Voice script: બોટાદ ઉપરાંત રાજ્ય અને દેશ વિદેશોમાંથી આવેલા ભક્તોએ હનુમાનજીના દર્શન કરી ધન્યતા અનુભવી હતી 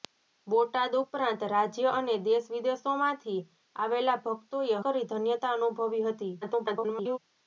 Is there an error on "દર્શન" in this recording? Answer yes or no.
yes